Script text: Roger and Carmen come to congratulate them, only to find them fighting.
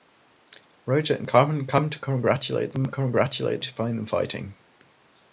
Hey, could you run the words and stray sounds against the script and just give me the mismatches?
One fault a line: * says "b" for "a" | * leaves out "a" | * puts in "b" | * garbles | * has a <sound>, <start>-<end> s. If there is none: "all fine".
* says "congratulate" for "only"